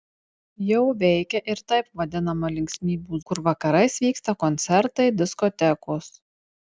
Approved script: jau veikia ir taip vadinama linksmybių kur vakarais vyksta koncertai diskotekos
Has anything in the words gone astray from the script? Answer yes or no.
no